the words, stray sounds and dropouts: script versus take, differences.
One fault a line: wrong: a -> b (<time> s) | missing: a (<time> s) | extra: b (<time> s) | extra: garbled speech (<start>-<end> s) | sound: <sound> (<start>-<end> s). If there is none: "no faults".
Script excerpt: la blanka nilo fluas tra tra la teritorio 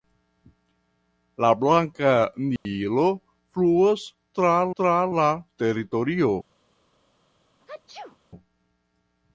sound: dropout (2.6-2.7 s)
sound: sneeze (7.6-8.2 s)